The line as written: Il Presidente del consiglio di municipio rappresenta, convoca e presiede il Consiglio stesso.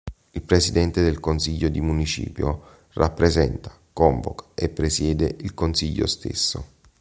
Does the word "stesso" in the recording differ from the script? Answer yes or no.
no